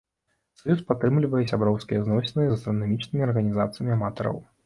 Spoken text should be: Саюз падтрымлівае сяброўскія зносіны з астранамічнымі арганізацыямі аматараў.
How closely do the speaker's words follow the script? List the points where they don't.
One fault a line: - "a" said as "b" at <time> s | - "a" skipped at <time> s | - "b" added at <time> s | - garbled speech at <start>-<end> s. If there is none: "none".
none